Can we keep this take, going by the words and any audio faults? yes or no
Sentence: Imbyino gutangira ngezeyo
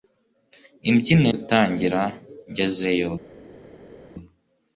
yes